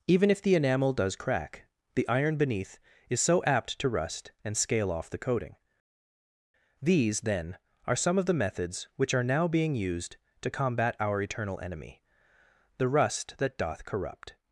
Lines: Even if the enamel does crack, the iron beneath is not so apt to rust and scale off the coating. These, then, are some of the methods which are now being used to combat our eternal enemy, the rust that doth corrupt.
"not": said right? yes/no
no